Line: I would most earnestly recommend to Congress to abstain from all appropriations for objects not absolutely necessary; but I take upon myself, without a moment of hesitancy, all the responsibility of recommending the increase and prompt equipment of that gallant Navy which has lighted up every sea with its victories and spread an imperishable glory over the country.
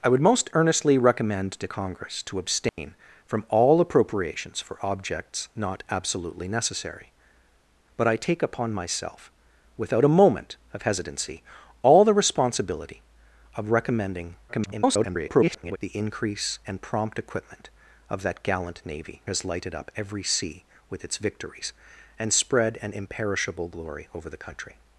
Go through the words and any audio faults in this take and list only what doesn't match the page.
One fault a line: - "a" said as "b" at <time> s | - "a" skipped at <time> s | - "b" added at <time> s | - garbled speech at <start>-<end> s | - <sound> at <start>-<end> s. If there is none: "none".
- dropout at 2.7-2.8 s
- garbled speech at 14.5-15.8 s
- "which" skipped at 19.2 s